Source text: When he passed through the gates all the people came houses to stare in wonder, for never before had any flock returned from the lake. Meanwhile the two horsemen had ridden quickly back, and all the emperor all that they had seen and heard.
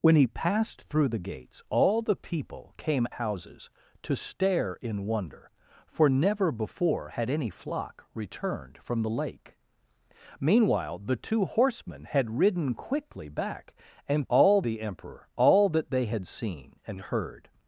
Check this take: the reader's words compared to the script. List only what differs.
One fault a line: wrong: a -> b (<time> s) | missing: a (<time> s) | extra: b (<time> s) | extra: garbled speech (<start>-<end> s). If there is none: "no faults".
no faults